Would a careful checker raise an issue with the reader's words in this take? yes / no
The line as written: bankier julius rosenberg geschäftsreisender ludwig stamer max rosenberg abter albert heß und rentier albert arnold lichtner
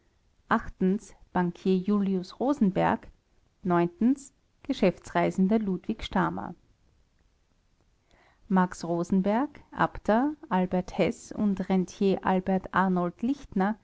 no